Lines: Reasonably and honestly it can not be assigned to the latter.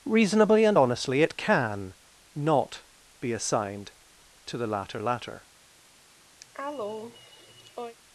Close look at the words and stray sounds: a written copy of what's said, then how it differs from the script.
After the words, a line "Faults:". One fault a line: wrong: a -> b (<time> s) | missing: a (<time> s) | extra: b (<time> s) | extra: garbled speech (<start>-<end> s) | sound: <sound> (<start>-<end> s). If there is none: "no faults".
Reasonably and honestly it can not be assigned to the latter latter.
Faults:
extra: latter (5.0 s)
sound: cough (6.4-8.0 s)